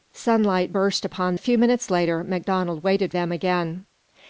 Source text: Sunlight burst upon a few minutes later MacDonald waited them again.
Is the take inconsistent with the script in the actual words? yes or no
no